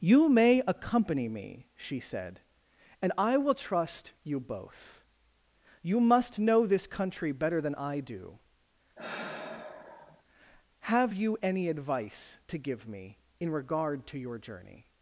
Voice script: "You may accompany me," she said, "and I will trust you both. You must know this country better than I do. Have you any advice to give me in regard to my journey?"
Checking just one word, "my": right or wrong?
wrong